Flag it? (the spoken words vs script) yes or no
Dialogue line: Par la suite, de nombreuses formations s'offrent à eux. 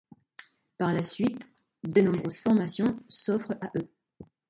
no